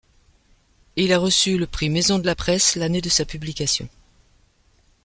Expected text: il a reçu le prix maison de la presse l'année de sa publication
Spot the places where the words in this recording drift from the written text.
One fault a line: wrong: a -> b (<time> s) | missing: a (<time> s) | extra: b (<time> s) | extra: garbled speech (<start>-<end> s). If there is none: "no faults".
no faults